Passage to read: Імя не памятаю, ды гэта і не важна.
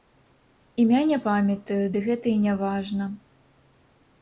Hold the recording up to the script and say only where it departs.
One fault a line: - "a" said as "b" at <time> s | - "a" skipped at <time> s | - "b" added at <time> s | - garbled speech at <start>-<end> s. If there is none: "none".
none